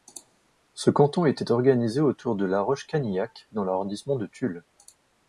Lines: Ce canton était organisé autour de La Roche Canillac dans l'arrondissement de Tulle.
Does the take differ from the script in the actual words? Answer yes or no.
no